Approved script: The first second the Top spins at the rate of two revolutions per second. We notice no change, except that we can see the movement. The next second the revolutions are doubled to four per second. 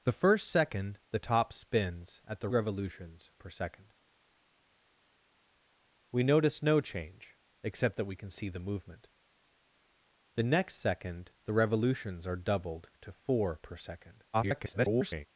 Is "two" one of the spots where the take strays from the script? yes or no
yes